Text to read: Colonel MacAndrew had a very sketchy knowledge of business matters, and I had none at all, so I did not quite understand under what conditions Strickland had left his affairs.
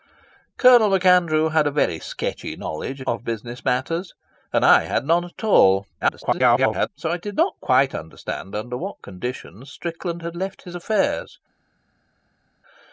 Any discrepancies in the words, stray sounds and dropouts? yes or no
yes